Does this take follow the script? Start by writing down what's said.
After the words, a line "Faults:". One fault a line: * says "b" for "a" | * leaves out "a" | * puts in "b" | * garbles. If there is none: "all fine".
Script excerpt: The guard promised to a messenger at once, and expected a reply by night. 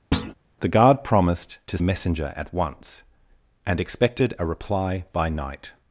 The guard promised to a messenger at once, and expected a reply by night.
Faults:
all fine